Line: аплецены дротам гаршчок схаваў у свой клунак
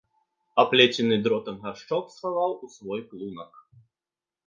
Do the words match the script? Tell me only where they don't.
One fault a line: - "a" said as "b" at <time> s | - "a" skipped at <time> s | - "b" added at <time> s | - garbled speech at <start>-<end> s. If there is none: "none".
none